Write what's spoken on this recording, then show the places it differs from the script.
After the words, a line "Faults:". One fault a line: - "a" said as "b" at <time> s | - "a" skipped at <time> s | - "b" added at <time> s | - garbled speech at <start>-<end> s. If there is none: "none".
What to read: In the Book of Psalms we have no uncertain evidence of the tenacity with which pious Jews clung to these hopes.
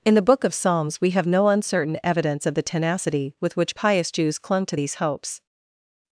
In the Book of Psalms we have no uncertain evidence of the tenacity with which pious Jews clung to these hopes.
Faults:
none